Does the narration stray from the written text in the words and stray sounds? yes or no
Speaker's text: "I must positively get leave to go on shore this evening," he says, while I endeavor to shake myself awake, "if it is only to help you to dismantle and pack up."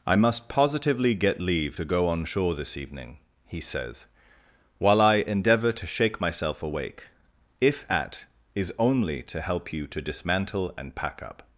yes